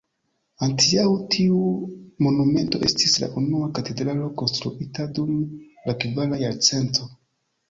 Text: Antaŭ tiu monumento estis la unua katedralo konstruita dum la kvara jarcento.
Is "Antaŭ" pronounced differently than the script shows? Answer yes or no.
no